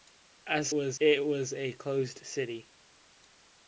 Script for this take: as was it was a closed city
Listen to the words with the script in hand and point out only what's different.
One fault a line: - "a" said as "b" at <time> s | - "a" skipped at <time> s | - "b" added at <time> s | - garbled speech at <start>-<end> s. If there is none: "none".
none